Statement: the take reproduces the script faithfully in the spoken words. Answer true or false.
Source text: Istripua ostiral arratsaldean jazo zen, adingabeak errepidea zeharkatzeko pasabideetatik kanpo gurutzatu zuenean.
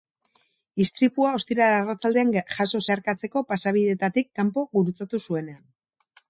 false